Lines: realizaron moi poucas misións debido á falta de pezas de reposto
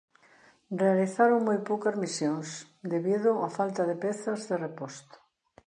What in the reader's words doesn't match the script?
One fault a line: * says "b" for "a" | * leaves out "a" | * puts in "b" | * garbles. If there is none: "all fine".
all fine